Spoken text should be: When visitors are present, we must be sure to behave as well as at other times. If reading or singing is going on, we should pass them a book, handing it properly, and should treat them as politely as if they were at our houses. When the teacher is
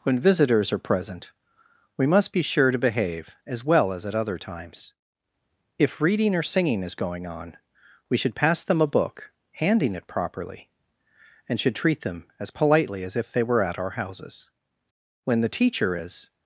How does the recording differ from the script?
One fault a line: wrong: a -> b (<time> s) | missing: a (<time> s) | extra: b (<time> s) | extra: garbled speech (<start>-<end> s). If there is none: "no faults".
no faults